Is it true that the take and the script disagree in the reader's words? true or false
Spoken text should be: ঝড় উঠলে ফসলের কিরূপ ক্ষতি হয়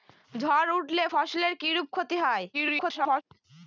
true